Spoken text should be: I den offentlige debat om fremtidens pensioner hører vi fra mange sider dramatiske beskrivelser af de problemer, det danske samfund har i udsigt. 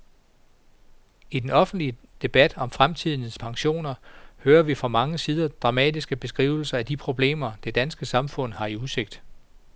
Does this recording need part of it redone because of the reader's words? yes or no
no